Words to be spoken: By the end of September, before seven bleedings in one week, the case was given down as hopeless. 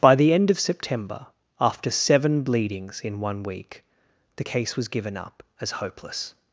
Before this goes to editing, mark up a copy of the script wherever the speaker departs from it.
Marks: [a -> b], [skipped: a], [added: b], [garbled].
By the end of September, [before -> after] seven bleedings in one week, the case was given [down -> up] as hopeless.